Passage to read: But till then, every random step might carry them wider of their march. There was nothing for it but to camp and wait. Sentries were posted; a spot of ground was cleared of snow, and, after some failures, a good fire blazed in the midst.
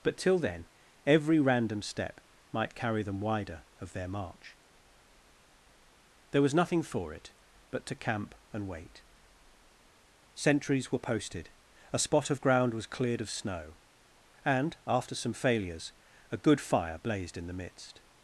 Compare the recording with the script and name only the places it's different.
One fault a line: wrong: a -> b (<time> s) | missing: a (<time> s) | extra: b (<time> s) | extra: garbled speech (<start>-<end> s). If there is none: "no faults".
no faults